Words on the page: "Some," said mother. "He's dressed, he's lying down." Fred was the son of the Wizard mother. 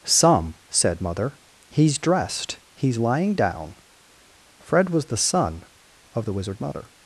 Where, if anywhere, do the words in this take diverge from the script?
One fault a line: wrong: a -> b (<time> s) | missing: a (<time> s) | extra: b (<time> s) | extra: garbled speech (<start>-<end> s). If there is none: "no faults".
no faults